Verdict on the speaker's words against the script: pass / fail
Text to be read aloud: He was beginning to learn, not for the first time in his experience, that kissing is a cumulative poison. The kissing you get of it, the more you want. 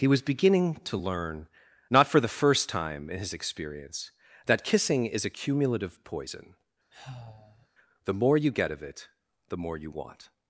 fail